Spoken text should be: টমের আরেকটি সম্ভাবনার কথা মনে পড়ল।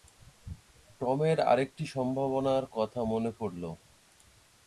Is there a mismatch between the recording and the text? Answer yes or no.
no